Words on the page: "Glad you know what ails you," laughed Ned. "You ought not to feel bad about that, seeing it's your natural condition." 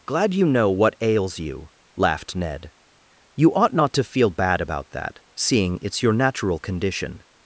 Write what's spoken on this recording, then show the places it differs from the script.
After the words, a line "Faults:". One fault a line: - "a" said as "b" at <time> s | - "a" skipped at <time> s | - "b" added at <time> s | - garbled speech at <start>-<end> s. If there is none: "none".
"Glad you know what ails you," laughed Ned. "You ought not to feel bad about that, seeing it's your natural condition."
Faults:
none